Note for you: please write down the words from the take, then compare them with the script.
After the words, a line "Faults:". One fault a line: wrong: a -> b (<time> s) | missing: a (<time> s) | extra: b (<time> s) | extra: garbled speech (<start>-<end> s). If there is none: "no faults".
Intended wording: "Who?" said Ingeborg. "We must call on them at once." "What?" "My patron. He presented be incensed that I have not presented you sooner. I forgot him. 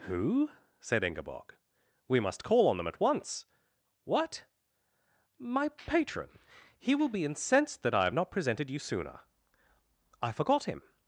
"Who?" said Ingeborg. "We must call on them at once." "What?" "My patron. He will be incensed that I have not presented you sooner. I forgot him.
Faults:
wrong: presented -> will (7.0 s)